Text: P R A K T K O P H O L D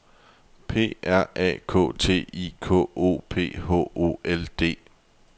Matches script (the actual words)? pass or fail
fail